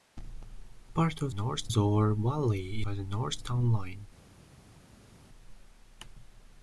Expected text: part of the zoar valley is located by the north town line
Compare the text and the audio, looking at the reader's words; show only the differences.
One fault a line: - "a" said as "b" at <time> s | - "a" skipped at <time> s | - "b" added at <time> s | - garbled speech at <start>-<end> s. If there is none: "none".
- "the" said as "north" at 1.3 s
- "is located" skipped at 2.8 s